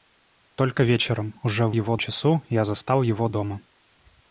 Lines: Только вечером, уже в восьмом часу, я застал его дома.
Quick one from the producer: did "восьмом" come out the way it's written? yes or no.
no